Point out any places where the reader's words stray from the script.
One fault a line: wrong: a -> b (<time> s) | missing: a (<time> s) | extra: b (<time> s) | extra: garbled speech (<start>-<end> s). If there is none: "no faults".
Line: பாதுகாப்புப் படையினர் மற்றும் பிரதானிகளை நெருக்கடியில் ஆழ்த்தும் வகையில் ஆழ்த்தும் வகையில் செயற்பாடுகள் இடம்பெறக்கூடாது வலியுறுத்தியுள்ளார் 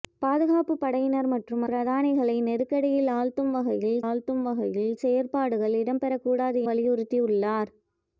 no faults